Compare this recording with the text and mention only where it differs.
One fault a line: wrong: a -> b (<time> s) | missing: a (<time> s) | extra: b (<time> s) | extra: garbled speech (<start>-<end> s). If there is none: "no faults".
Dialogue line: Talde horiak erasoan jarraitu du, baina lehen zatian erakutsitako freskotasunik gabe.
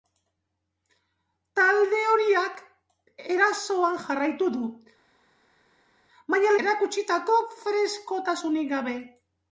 missing: lehen zatian (6.6 s)